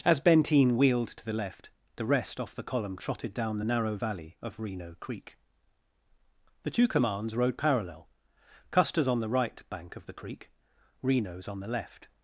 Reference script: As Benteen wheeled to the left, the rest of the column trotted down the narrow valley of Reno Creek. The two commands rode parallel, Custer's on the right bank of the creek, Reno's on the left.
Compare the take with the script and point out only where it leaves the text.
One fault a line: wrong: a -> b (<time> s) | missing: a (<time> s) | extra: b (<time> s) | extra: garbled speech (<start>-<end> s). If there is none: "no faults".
wrong: of -> off (2.4 s)